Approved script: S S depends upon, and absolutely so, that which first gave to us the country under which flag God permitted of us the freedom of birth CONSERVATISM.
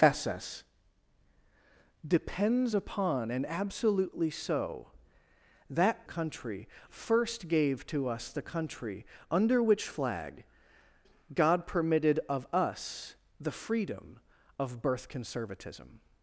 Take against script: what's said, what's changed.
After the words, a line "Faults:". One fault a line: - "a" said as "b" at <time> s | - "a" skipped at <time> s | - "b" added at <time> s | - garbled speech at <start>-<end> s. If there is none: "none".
S S depends upon, and absolutely so, that country first gave to us the country under which flag God permitted of us the freedom of birth CONSERVATISM.
Faults:
- "which" said as "country" at 6.0 s